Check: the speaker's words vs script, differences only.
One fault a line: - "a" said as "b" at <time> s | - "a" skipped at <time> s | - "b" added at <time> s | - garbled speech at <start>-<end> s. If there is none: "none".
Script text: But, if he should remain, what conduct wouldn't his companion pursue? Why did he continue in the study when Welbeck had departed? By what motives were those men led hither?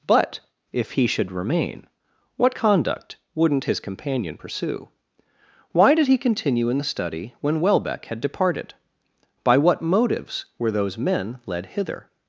none